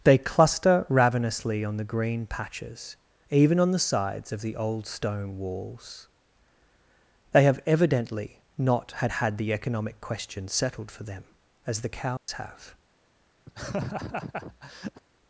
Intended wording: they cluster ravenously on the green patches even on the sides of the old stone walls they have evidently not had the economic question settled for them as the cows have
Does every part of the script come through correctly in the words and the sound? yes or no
no